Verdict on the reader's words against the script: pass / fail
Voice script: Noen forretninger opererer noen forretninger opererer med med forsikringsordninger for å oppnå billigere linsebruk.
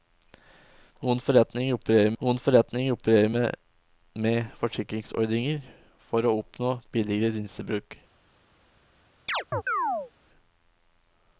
pass